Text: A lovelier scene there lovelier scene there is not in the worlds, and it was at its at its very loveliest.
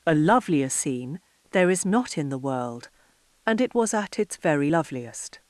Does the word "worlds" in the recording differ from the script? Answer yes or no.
yes